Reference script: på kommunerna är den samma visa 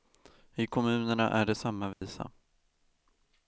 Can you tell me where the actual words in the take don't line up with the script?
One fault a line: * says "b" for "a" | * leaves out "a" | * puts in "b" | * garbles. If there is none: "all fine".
* says "i" for "på"
* says "det" for "den"